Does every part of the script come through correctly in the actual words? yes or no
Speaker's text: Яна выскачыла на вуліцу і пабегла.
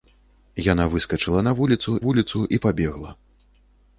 no